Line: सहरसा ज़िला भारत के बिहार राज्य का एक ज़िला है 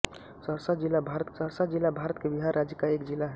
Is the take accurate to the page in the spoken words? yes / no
no